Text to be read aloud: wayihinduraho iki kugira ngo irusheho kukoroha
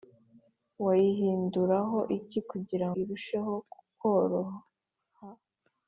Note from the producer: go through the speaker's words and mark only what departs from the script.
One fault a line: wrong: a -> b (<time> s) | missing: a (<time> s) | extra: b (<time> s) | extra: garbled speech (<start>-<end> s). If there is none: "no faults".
missing: ngo (2.9 s)